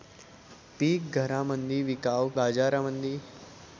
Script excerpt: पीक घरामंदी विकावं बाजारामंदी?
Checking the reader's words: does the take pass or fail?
pass